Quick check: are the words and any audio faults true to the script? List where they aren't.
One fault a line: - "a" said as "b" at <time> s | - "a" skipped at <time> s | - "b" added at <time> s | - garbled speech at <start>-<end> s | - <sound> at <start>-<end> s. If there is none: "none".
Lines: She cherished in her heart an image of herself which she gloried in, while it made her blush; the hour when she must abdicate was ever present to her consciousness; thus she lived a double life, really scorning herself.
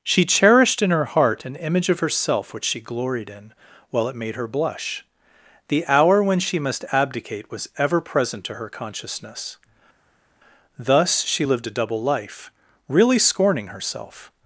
none